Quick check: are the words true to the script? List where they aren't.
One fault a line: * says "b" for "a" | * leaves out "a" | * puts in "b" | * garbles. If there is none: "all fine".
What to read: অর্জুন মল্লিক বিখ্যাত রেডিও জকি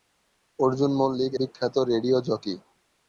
all fine